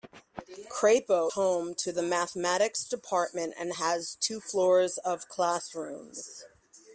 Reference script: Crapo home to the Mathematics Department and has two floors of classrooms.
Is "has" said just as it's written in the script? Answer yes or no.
yes